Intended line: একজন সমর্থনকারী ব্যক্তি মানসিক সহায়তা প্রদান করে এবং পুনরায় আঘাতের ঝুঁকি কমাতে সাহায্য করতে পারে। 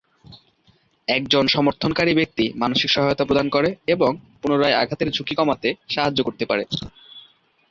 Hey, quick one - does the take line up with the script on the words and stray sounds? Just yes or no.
yes